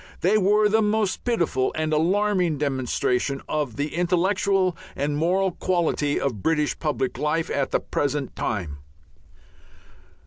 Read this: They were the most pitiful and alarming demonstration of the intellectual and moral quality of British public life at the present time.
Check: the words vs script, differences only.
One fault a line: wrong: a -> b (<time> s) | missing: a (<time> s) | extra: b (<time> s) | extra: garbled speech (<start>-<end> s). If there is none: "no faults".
no faults